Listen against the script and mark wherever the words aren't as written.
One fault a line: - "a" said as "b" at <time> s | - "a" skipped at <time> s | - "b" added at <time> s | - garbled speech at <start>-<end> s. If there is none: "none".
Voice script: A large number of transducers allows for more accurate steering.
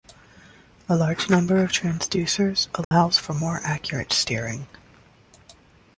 none